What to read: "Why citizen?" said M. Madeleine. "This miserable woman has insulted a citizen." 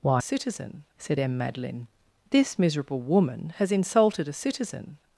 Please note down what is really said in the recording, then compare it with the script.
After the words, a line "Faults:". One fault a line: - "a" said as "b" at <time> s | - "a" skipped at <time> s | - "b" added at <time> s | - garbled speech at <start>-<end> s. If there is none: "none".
"Why citizen?" said M. Madeleine. "This miserable woman has insulted a citizen."
Faults:
none